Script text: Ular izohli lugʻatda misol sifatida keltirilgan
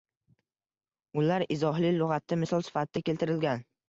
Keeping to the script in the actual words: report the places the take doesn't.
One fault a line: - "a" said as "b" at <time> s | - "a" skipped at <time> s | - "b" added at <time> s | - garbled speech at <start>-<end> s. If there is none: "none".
none